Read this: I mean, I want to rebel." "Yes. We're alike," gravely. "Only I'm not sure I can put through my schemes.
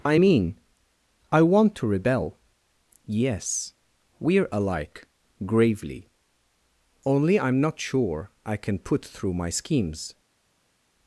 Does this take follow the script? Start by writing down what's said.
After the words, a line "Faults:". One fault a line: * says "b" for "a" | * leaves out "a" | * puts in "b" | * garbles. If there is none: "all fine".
I mean, I want to rebel." "Yes. We're alike," gravely. "Only I'm not sure I can put through my schemes.
Faults:
all fine